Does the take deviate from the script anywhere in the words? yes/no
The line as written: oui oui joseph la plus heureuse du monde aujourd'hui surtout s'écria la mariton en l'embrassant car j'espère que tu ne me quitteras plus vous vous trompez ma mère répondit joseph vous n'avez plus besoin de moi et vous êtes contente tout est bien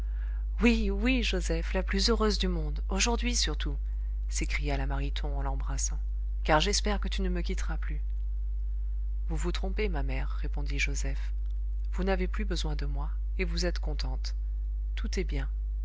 no